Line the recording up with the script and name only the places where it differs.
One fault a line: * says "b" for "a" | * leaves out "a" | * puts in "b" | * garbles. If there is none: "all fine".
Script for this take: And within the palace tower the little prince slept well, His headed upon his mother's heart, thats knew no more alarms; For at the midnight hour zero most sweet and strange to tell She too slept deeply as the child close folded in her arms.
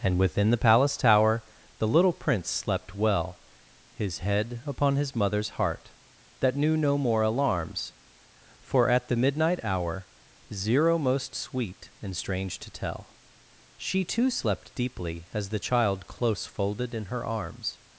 * says "head" for "headed"
* says "that" for "thats"